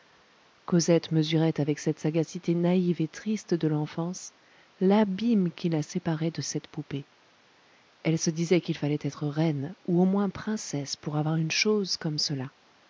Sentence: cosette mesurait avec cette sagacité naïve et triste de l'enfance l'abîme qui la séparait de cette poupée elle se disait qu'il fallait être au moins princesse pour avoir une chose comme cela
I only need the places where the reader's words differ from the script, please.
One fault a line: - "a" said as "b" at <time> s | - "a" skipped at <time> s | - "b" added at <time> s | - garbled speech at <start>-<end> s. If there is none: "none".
- "reine ou" added at 9.3 s